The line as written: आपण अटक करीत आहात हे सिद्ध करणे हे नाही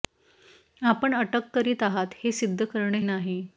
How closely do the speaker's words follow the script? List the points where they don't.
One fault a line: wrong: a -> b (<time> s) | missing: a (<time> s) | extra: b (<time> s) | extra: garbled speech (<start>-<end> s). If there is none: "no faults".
missing: हे (3.0 s)